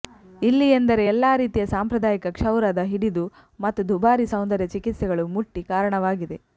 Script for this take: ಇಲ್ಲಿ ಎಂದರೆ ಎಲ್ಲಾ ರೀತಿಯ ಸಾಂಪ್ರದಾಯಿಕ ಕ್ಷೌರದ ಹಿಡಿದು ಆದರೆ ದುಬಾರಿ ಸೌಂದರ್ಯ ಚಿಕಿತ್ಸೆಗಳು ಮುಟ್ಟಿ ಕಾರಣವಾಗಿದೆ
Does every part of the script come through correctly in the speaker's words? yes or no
no